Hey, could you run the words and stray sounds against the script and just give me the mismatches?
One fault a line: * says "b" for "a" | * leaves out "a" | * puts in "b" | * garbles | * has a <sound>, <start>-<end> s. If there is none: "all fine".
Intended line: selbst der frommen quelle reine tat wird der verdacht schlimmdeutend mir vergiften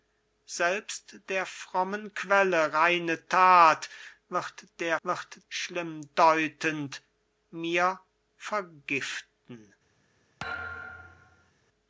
* says "wird" for "verdacht"
* has a thud, 10.4-11.5 s